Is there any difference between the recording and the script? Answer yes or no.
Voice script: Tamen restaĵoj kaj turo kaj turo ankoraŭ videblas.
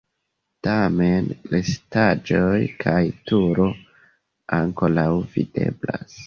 yes